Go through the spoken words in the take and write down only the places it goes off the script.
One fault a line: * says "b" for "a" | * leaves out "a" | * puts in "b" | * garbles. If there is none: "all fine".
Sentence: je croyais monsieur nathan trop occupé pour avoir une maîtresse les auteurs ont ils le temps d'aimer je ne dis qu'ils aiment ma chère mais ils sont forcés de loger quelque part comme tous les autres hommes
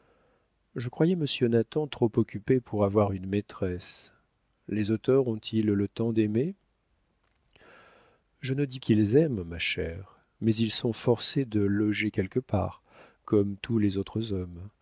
all fine